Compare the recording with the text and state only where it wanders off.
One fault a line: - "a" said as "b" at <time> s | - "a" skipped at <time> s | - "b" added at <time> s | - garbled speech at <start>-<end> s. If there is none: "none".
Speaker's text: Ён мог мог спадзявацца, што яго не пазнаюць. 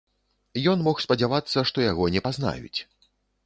- "мог" skipped at 1.0 s